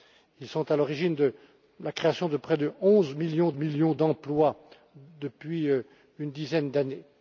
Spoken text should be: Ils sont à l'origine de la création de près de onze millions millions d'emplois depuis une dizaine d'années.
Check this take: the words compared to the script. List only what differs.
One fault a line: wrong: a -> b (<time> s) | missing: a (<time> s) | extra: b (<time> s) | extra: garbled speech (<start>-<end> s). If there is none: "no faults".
no faults